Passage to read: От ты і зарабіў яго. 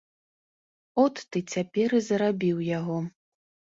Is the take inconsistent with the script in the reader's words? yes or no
yes